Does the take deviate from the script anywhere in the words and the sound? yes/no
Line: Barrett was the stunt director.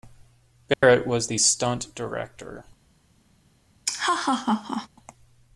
yes